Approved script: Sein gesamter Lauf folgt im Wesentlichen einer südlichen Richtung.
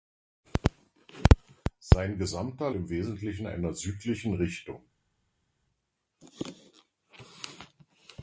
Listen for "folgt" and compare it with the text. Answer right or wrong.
wrong